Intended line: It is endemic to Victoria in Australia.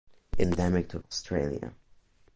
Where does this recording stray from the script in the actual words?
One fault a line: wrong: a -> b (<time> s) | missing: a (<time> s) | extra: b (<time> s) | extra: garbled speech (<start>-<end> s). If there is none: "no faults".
missing: is (0.5 s)
missing: Victoria in (1.0 s)